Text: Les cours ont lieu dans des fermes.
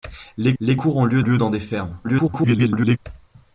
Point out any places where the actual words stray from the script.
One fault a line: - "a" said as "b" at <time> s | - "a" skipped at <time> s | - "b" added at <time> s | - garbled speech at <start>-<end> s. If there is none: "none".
- "les" added at 0.6 s
- "lieu" added at 1.2 s
- garbled speech at 2.0-3.0 s